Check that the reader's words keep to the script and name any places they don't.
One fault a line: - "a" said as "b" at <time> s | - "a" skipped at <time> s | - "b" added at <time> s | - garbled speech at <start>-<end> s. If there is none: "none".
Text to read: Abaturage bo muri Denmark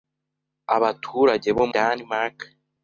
- "muri" skipped at 1.6 s